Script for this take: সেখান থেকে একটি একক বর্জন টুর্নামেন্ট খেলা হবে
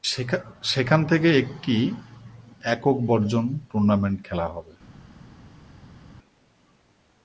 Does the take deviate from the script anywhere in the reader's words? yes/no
no